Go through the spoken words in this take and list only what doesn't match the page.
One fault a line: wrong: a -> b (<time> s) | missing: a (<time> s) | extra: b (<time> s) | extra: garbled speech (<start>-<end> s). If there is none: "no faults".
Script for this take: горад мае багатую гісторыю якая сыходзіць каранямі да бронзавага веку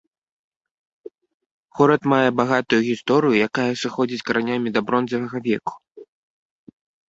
no faults